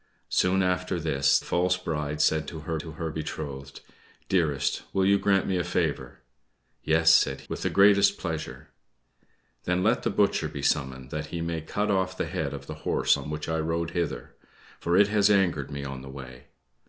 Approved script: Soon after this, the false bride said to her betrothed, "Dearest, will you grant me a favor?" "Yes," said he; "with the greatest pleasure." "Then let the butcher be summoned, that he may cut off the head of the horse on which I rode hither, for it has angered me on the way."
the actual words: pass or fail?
fail